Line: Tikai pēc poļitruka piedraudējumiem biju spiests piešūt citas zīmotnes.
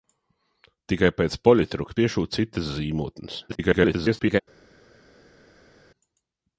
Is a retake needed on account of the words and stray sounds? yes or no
yes